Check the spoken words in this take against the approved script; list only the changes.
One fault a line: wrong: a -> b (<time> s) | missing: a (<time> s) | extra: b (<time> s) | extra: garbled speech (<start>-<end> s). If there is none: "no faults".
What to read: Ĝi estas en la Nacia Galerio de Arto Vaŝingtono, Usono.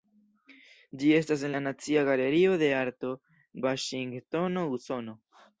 no faults